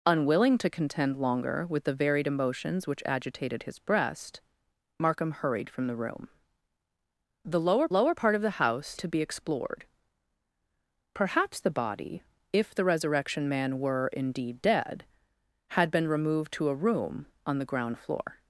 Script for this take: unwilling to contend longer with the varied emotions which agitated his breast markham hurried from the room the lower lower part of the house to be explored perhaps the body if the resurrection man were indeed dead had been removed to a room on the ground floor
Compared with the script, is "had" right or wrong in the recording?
right